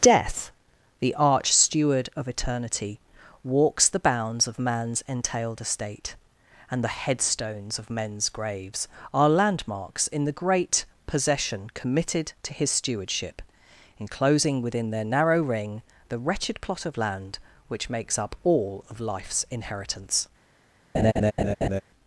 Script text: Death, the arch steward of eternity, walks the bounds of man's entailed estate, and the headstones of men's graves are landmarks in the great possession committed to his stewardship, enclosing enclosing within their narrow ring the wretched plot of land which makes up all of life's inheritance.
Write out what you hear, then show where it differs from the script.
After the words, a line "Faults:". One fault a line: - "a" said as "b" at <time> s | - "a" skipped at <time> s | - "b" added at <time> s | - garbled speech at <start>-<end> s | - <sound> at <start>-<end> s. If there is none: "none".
Death, the arch steward of eternity, walks the bounds of man's entailed estate, and the headstones of men's graves are landmarks in the great possession committed to his stewardship, enclosing within their narrow ring the wretched plot of land which makes up all of life's inheritance.
Faults:
- "enclosing" skipped at 14.6 s
- laugh at 20.9-21.8 s